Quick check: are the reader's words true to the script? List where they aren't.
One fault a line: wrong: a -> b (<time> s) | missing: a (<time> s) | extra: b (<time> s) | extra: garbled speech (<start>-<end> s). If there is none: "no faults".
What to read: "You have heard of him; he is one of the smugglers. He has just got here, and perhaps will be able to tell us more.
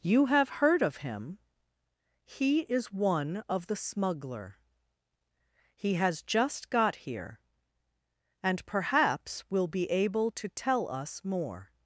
wrong: smugglers -> smuggler (3.8 s)